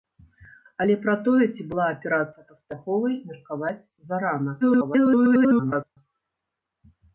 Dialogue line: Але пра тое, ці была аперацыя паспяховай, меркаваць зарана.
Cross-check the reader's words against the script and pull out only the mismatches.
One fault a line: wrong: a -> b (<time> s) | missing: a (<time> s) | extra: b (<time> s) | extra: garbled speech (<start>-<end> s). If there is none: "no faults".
extra: garbled speech (4.6-6.0 s)